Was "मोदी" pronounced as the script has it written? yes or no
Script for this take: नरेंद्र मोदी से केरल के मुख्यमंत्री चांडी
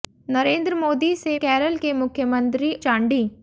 yes